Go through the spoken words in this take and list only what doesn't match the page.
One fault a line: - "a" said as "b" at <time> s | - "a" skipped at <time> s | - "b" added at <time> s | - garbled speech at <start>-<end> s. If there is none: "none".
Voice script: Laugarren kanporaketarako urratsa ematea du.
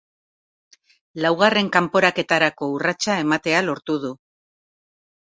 - "lortu" added at 3.7 s